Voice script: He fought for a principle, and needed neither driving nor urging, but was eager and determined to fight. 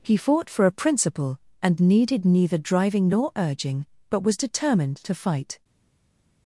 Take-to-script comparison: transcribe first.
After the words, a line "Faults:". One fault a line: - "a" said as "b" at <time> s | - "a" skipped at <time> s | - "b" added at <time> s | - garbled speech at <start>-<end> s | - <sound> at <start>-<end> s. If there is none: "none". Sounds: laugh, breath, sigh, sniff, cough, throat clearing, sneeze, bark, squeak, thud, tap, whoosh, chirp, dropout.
He fought for a principle, and needed neither driving nor urging, but was determined to fight.
Faults:
- "eager and" skipped at 4.4 s